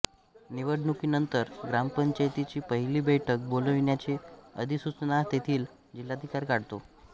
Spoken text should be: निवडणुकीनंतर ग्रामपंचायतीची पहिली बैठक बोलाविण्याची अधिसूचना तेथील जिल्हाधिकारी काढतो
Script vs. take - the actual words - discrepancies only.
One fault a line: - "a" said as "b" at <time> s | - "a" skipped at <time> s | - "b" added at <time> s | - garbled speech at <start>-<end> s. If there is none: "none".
none